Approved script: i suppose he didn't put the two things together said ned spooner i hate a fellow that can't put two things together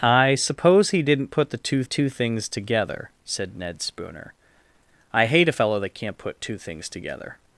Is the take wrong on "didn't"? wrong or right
right